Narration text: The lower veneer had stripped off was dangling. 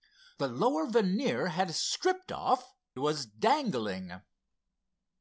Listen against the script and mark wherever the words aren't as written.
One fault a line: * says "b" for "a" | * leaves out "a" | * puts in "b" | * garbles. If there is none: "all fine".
all fine